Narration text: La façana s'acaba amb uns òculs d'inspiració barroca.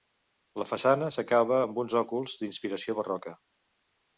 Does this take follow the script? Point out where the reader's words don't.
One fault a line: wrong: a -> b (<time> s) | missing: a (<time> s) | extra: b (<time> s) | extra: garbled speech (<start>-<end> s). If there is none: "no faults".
no faults